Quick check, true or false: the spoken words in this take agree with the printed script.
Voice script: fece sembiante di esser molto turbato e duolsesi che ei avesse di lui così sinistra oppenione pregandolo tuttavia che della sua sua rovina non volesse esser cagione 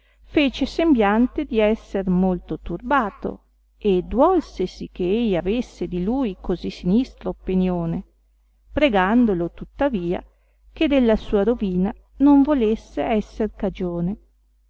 false